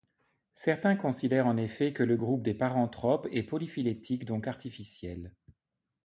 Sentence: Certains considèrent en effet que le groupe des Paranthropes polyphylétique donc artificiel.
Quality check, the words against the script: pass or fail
fail